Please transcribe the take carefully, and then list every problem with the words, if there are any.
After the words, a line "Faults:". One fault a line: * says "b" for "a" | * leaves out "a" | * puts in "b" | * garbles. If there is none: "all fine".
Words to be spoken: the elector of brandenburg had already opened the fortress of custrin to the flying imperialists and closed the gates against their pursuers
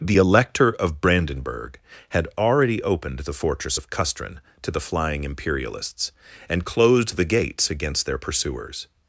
the elector of brandenburg had already opened the fortress of custrin to the flying imperialists and closed the gates against their pursuers
Faults:
all fine